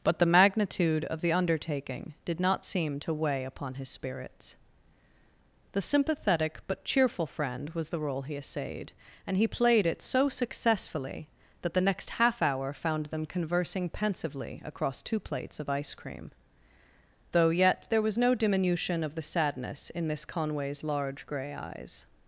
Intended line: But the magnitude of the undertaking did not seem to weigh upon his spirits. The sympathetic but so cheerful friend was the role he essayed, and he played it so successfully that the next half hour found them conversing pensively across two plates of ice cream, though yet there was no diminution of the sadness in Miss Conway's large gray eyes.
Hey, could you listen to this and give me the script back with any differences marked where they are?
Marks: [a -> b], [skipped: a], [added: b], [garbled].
But the magnitude of the undertaking did not seem to weigh upon his spirits. The sympathetic but [skipped: so] cheerful friend was the role he essayed, and he played it so successfully that the next half hour found them conversing pensively across two plates of ice cream, though yet there was no diminution of the sadness in Miss Conway's large gray eyes.